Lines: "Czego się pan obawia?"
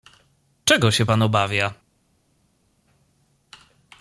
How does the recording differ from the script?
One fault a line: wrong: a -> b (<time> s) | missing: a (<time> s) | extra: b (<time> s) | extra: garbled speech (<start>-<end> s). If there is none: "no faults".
no faults